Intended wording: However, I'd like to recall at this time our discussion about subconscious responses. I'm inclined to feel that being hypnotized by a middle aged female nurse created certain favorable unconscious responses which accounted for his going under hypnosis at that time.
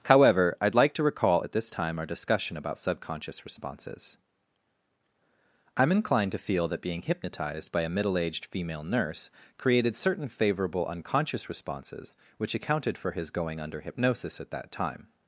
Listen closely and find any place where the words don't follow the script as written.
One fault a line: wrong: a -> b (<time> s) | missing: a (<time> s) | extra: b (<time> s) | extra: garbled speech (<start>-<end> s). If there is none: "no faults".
no faults